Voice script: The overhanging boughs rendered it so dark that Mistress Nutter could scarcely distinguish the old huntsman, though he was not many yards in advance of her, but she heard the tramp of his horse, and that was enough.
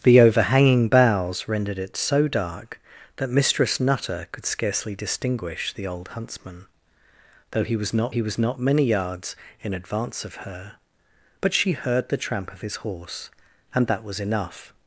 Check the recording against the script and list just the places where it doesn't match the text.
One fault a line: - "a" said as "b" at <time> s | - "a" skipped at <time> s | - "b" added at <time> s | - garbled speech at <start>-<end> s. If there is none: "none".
- "he was not" added at 8.1 s